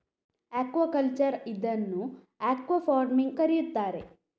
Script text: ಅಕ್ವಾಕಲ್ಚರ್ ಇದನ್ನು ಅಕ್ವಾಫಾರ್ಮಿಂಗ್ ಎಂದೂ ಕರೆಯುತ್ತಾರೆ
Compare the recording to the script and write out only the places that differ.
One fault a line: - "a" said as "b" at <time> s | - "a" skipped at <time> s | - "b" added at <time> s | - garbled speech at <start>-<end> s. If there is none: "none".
- "ಎಂದೂ" skipped at 3.4 s